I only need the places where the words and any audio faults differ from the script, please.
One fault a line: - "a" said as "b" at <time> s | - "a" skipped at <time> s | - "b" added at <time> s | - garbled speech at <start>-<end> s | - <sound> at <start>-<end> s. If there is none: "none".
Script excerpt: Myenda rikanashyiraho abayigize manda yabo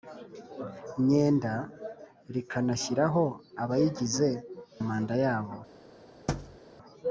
- thud at 6.3-6.6 s